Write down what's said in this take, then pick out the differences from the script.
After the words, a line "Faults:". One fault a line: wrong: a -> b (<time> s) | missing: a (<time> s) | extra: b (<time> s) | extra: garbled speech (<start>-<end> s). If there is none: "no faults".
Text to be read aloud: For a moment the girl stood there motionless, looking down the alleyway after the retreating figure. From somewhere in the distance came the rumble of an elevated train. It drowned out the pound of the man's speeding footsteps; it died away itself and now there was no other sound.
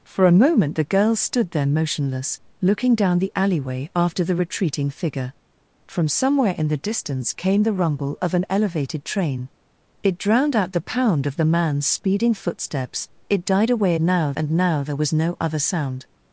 For a moment the girl stood there motionless, looking down the alleyway after the retreating figure. From somewhere in the distance came the rumble of an elevated train. It drowned out the pound of the man's speeding footsteps; it died away now and now there was no other sound.
Faults:
wrong: itself -> now (14.0 s)